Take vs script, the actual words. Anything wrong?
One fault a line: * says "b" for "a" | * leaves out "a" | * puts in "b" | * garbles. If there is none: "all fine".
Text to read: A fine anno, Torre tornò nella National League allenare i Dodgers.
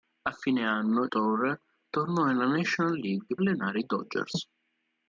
all fine